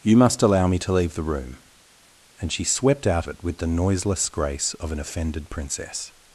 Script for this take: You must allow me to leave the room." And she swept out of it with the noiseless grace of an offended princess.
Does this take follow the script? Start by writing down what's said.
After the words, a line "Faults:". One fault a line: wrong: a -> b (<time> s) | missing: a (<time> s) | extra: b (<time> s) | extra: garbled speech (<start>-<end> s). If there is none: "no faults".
You must allow me to leave the room." And she swept out it with the noiseless grace of an offended princess.
Faults:
missing: of (3.3 s)